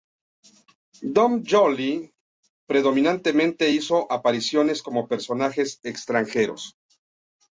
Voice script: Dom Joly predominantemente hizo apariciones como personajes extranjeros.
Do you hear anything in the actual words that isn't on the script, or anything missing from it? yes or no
no